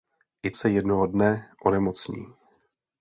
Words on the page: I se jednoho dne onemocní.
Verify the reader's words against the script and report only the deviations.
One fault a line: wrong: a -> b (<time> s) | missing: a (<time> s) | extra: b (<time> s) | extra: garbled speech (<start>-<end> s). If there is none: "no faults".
no faults